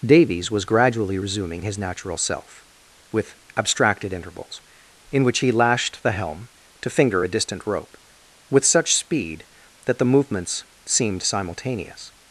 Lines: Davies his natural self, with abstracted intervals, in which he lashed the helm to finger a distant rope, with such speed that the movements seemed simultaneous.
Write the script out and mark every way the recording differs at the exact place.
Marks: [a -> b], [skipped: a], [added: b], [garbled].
Davies [added: was gradually resuming] his natural self, with abstracted intervals, in which he lashed the helm to finger a distant rope, with such speed that the movements seemed simultaneous.